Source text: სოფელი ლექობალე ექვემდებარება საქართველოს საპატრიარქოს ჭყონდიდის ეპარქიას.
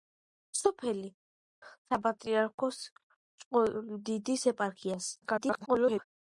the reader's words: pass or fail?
fail